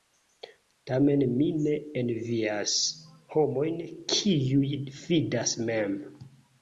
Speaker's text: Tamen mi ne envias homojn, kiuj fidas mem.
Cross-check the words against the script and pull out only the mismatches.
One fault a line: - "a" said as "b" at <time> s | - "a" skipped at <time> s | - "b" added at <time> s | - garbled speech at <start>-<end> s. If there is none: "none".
none